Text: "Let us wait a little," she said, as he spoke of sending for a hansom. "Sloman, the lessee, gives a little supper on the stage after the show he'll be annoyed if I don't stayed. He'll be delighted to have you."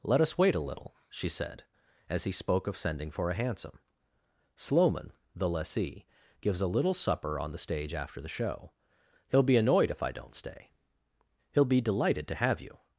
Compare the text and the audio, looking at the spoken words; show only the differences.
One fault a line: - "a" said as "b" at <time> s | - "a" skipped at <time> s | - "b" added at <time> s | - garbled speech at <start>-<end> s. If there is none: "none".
- "stayed" said as "stay" at 10.4 s